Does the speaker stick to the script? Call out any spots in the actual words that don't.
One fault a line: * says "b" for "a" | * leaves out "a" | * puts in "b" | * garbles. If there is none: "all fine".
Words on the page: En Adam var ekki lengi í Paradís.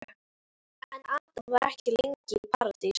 all fine